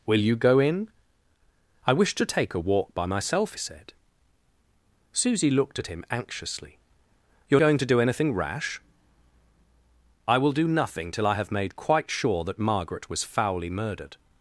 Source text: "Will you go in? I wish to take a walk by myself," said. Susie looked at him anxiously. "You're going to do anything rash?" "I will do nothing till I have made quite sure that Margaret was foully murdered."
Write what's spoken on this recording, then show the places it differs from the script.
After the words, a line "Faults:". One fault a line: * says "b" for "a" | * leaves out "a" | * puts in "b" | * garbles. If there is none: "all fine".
"Will you go in? I wish to take a walk by myself," said. Susie looked at him anxiously. "You're going to do anything rash?" "I will do nothing till I have made quite sure that Margaret was foully murdered."
Faults:
all fine